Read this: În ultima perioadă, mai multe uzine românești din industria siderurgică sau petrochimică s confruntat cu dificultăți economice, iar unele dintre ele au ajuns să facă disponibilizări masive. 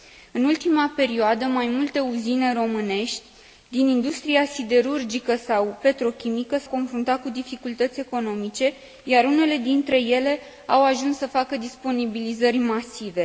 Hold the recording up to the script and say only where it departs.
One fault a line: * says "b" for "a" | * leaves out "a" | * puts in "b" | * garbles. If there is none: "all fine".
all fine